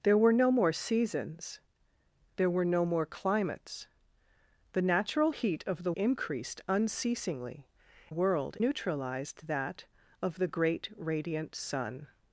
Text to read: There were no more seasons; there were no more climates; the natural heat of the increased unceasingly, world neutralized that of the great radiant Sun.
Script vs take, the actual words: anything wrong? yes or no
no